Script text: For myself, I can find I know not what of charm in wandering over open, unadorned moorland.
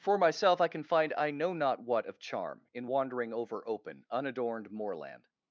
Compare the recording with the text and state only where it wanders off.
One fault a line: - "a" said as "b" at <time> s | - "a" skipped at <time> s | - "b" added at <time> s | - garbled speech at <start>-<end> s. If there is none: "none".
none